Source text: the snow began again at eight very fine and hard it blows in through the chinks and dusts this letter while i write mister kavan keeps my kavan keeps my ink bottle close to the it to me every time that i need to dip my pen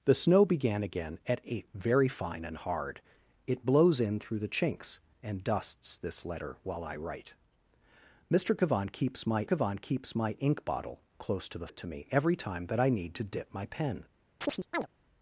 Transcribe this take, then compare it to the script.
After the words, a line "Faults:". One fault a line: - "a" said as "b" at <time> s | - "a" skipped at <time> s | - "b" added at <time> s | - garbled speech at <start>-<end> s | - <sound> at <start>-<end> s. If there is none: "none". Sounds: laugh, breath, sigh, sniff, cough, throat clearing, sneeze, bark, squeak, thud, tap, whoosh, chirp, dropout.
the snow began again at eight very fine and hard it blows in through the chinks and dusts this letter while i write mister kavan keeps my kavan keeps my ink bottle close to the it to me every time that i need to dip my pen
Faults:
- chirp at 14.4-14.9 s